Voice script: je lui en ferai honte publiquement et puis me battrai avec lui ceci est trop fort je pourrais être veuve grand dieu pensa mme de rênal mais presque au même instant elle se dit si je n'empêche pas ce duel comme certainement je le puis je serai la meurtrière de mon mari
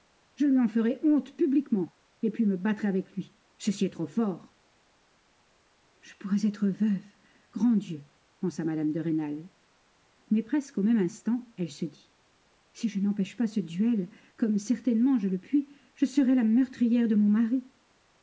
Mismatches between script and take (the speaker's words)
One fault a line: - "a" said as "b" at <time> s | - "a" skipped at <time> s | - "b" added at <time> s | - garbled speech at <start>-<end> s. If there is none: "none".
none